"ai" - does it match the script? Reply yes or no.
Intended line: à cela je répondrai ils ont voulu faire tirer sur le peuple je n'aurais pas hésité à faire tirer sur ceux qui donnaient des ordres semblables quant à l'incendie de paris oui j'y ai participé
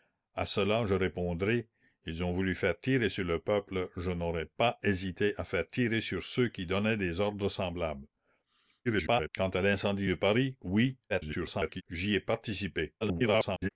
yes